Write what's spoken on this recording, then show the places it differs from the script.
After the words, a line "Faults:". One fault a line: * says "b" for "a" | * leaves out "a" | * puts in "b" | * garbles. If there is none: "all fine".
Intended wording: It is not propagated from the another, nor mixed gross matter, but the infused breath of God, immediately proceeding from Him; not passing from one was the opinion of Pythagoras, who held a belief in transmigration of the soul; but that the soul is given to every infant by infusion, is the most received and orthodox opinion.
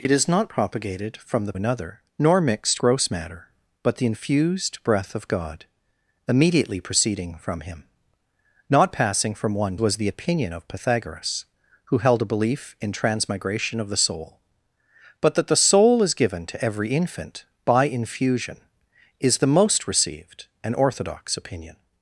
It is not propagated from the another, nor mixed gross matter, but the infused breath of God, immediately proceeding from Him; not passing from one was the opinion of Pythagoras, who held a belief in transmigration of the soul; but that the soul is given to every infant by infusion, is the most received and orthodox opinion.
Faults:
all fine